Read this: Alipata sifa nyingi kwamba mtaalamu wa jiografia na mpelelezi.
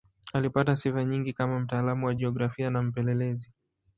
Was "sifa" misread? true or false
false